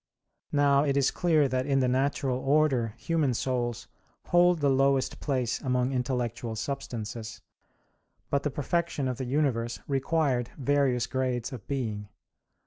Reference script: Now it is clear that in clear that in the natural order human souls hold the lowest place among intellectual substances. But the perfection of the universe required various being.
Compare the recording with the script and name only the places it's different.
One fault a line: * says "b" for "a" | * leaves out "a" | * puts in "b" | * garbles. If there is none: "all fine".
* leaves out "clear that in"
* puts in "grades of"